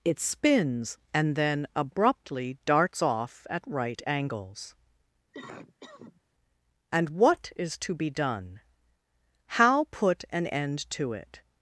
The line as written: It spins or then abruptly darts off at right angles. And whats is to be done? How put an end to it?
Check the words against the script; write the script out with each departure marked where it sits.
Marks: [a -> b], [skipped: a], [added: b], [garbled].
It spins [or -> and] then abruptly darts off at right angles. And [whats -> what] is to be done? How put an end to it?